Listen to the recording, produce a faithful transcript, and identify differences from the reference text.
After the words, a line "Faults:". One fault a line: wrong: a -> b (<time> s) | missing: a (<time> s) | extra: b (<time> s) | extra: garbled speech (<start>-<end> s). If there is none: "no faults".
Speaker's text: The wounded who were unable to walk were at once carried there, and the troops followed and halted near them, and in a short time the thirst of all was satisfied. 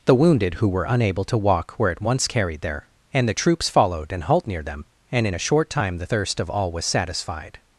The wounded who were unable to walk were at once carried there, and the troops followed and halt near them, and in a short time the thirst of all was satisfied.
Faults:
wrong: halted -> halt (4.2 s)